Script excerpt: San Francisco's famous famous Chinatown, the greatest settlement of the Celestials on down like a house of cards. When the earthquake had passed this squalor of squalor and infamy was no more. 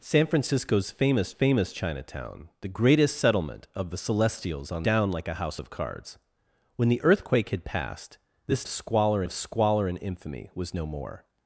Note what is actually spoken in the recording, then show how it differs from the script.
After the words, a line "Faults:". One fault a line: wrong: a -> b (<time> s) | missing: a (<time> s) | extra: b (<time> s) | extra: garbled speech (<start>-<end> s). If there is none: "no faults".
San Francisco's famous famous Chinatown, the greatest settlement of the Celestials on down like a house of cards. When the earthquake had passed this squalor of squalor and infamy was no more.
Faults:
no faults